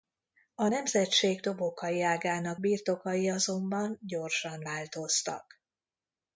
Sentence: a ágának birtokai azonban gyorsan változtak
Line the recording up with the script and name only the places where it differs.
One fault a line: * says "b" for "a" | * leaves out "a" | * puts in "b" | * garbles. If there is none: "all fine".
* puts in "nemzetség dobokai"